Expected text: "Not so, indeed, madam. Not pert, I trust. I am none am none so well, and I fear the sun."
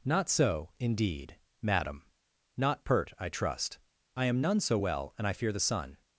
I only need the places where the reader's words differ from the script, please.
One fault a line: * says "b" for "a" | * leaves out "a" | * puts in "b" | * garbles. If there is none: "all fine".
* leaves out "am none"